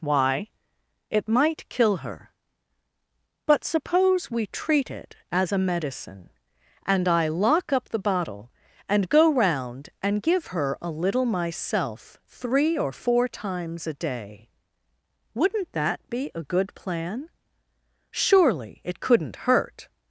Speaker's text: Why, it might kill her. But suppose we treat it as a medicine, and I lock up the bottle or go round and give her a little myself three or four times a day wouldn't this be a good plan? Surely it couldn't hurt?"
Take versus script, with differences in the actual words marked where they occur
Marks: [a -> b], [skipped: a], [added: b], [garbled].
Why, it might kill her. But suppose we treat it as a medicine, and I lock up the bottle [or -> and] go round and give her a little myself three or four times a day wouldn't [this -> that] be a good plan? Surely it couldn't hurt?"